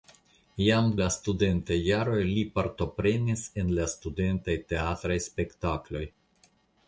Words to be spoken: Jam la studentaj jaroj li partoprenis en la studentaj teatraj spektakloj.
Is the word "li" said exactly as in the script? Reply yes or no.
yes